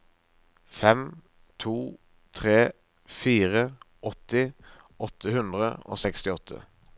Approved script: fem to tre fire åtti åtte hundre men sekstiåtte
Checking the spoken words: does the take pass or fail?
fail